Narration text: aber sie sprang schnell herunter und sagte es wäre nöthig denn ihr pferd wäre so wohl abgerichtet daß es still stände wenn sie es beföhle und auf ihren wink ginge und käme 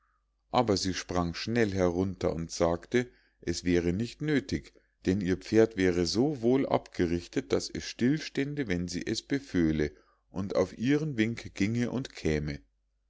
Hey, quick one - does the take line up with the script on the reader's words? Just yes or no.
no